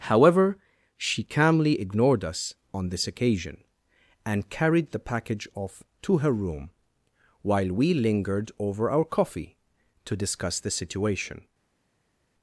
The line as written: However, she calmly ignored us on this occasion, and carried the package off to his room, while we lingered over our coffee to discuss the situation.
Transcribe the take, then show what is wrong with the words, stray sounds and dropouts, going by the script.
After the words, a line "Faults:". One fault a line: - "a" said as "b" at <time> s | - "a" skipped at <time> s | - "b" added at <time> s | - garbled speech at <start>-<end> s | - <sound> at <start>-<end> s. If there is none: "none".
However, she calmly ignored us on this occasion, and carried the package off to her room, while we lingered over our coffee to discuss the situation.
Faults:
- "his" said as "her" at 6.2 s